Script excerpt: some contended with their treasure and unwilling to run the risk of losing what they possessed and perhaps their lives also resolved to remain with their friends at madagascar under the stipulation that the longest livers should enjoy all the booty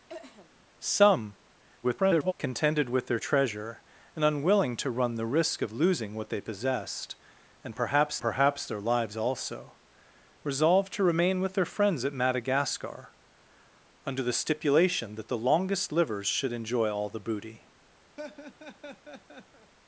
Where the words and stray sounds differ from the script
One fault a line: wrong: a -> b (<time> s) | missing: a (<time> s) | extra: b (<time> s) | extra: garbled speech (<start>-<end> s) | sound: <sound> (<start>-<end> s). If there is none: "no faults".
sound: throat clearing (0.1-0.7 s)
extra: garbled speech (1.8-2.3 s)
extra: perhaps (8.2 s)
sound: laugh (18.2-19.7 s)